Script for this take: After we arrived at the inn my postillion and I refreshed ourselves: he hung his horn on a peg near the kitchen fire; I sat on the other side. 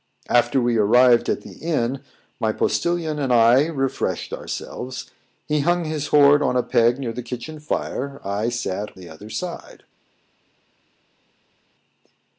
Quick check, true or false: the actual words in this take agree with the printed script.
false